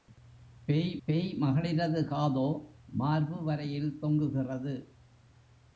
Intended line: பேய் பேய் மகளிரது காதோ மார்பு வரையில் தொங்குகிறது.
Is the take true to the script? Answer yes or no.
yes